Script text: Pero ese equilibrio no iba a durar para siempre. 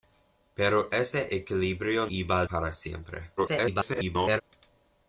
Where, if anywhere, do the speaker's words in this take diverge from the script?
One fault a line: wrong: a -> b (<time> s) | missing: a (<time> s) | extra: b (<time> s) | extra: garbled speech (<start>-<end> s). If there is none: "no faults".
missing: no (2.1 s)
missing: durar (2.4 s)
extra: garbled speech (3.4-4.4 s)